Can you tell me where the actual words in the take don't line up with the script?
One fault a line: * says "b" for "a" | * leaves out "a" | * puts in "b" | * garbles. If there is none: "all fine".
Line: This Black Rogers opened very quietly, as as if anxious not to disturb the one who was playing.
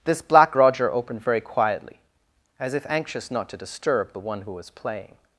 * says "Roger" for "Rogers"
* leaves out "as"